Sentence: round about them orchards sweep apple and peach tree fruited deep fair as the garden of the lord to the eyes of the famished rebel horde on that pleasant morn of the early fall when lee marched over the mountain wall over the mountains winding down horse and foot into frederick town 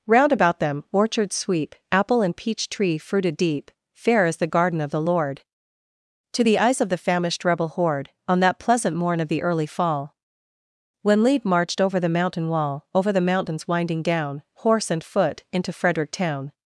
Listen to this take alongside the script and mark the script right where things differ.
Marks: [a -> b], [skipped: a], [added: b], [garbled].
round about them orchards sweep apple and peach tree fruited deep fair as the garden of the lord to the eyes of the famished rebel horde on that pleasant morn of the early fall when lee marched over the mountain wall over the mountains winding down horse and foot into frederick town